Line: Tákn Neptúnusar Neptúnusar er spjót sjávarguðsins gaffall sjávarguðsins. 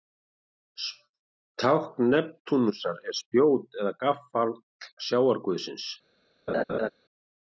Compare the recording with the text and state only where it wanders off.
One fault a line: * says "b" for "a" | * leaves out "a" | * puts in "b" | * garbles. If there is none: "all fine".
* leaves out "Neptúnusar"
* says "eða" for "sjávarguðsins"